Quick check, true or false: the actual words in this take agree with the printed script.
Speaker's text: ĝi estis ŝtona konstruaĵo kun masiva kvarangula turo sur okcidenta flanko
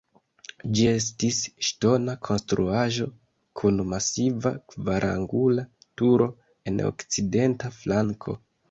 false